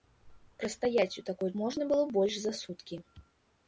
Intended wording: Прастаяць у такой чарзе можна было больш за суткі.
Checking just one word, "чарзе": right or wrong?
wrong